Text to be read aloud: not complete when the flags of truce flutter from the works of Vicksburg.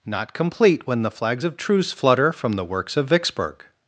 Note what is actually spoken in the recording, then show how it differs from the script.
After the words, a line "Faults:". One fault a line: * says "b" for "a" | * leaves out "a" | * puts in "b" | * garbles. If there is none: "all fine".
not complete when the flags of truce flutter from the works of Vicksburg.
Faults:
all fine